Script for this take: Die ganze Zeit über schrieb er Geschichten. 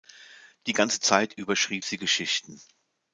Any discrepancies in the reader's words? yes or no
yes